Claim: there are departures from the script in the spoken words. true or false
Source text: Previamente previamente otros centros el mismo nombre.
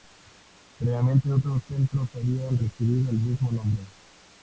true